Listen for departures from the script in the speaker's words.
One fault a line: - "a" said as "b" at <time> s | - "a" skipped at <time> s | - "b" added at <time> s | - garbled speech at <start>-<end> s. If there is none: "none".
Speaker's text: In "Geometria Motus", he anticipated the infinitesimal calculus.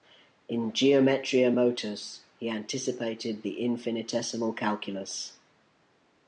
none